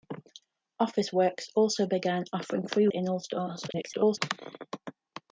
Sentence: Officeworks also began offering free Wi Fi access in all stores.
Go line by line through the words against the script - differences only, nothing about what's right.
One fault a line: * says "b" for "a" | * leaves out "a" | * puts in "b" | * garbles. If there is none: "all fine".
* leaves out "Wi Fi access"
* garbles